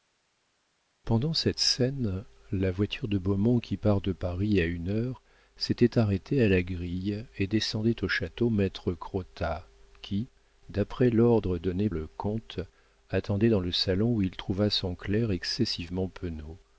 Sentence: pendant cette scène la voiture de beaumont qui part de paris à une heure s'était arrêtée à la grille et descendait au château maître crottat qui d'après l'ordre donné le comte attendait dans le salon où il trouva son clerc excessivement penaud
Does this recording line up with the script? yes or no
yes